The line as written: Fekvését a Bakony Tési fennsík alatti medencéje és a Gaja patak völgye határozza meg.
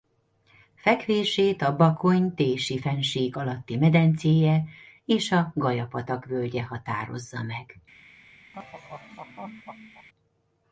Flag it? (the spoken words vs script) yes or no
no